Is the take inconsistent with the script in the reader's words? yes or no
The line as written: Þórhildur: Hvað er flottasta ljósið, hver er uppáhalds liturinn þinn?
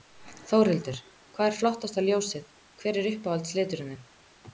no